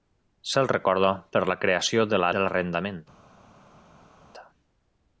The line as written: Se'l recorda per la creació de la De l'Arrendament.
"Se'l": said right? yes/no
yes